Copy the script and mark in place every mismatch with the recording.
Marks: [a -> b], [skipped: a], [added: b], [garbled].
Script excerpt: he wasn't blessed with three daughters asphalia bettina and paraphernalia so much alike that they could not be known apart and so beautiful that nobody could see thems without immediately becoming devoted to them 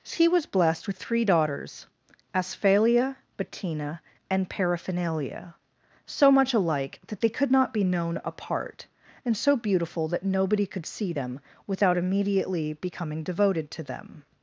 he [wasn't -> was] blessed with three daughters asphalia bettina and paraphernalia so much alike that they could not be known apart and so beautiful that nobody could see [thems -> them] without immediately becoming devoted to them